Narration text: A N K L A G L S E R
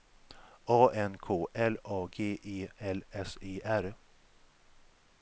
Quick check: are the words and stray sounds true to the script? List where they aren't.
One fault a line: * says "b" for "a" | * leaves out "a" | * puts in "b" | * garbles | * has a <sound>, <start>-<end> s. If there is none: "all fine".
* puts in "E"